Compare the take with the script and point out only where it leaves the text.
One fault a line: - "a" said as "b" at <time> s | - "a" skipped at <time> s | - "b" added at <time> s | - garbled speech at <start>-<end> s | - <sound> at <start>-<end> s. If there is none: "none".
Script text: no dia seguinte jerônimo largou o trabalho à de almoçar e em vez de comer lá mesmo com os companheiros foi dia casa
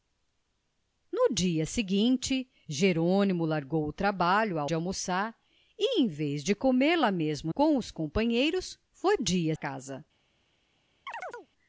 - chirp at 11.1-11.5 s